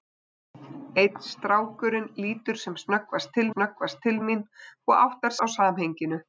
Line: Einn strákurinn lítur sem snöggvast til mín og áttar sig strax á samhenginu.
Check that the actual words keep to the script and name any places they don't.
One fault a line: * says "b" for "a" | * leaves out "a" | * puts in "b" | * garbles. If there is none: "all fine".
* puts in "snöggvast til"
* leaves out "sig strax"